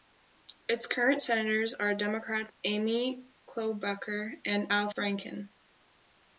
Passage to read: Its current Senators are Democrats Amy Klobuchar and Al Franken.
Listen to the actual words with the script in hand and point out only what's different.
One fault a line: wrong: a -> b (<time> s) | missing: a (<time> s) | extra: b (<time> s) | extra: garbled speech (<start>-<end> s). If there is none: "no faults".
no faults